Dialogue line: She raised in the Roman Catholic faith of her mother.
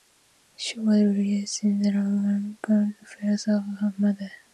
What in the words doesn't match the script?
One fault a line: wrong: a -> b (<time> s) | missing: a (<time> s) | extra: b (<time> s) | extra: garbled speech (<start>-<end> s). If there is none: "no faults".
extra: was (0.8 s)